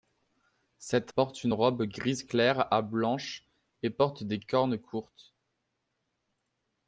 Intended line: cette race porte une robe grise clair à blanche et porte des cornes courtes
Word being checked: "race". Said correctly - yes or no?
no